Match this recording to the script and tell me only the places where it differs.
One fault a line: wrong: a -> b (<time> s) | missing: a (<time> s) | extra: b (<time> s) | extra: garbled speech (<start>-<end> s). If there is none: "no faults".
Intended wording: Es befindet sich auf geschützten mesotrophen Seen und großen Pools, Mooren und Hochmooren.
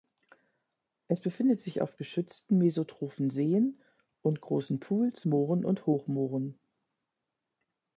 no faults